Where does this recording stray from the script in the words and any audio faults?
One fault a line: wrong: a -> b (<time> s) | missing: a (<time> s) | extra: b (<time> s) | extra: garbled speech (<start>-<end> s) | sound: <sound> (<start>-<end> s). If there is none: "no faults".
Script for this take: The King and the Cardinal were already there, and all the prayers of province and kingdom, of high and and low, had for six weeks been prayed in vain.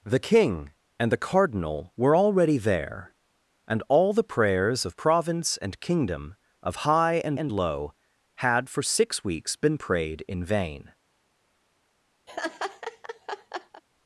sound: laugh (12.3-13.8 s)